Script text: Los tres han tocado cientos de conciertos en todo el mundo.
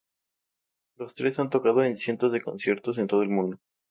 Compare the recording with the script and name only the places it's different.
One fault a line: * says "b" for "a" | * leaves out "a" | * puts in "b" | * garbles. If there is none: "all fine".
* puts in "en"